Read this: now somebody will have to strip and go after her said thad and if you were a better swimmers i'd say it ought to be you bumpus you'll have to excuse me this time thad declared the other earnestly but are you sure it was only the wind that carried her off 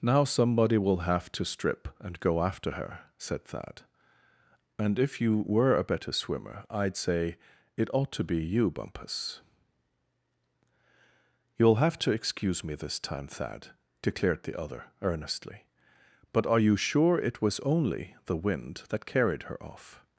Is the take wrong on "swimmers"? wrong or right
wrong